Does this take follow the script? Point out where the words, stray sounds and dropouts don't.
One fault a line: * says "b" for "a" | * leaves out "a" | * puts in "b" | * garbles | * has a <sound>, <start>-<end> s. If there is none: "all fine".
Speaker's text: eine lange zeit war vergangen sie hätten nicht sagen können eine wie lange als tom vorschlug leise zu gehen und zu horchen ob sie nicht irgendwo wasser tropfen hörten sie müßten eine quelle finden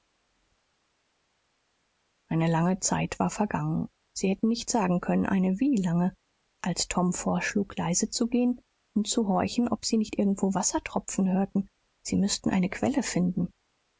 all fine